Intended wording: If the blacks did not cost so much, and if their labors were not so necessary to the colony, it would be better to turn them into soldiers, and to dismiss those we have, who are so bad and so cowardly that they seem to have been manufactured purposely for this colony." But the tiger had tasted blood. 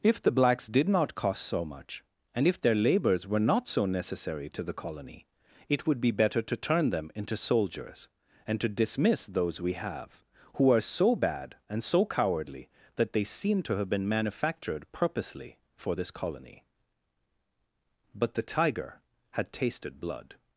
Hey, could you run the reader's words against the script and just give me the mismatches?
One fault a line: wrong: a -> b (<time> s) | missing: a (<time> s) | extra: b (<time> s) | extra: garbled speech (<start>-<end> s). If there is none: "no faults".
no faults